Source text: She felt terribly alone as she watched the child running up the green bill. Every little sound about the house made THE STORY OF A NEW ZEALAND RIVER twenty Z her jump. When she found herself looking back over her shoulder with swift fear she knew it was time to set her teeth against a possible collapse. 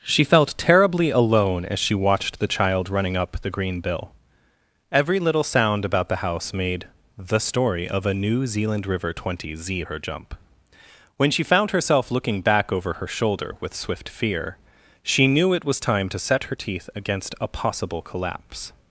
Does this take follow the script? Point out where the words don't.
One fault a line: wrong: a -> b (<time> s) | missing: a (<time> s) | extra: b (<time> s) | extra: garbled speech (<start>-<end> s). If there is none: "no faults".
no faults